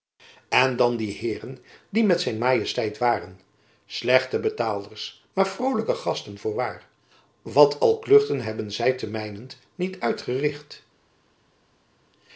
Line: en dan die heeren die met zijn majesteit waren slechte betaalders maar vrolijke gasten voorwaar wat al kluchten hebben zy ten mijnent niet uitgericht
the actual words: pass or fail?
pass